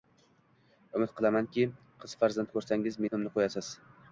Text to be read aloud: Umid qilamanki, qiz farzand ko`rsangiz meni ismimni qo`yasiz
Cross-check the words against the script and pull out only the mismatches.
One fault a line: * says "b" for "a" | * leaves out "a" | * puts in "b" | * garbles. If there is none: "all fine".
* leaves out "meni"